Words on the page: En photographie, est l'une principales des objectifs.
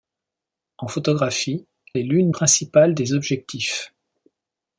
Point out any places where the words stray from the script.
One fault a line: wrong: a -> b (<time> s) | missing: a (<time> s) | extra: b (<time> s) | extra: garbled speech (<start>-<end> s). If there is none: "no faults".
no faults